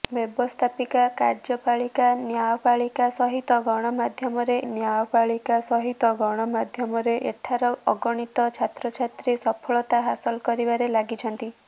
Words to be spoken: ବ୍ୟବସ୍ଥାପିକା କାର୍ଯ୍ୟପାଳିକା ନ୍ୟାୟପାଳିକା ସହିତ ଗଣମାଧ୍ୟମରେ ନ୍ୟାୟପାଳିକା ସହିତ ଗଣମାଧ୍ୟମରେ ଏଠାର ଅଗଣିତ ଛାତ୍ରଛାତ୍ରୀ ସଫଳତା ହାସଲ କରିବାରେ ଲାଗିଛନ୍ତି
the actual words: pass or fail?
pass